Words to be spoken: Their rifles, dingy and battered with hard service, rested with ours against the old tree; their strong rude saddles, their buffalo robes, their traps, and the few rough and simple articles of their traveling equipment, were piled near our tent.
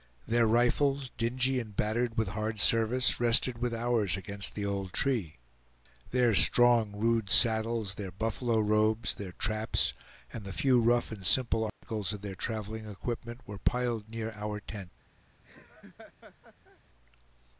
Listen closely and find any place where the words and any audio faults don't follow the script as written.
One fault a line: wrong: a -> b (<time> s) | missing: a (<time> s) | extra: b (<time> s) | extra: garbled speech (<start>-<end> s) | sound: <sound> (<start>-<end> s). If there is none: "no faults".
sound: dropout (11.7-11.8 s)
sound: laugh (15.4-16.8 s)